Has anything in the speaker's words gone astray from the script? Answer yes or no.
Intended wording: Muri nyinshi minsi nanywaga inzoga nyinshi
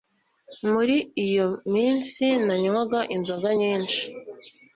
yes